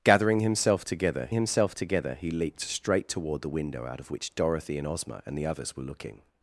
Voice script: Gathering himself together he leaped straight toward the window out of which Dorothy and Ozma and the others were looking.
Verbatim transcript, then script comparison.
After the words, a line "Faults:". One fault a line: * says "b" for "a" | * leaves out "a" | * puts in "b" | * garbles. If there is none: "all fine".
Gathering himself together himself together he leaped straight toward the window out of which Dorothy and Ozma and the others were looking.
Faults:
* puts in "himself together"